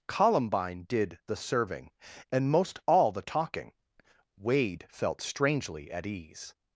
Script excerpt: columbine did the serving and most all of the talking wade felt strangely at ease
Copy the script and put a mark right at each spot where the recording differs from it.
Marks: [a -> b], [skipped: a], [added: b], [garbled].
columbine did the serving and most all [skipped: of] the talking wade felt strangely at ease